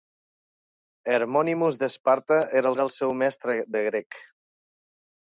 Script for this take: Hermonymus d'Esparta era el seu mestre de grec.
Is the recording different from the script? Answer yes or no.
yes